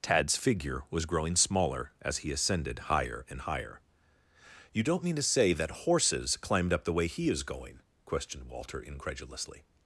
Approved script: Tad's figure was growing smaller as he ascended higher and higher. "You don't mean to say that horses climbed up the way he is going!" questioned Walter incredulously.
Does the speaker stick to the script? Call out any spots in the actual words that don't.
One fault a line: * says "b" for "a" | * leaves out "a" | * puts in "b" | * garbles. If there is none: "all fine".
all fine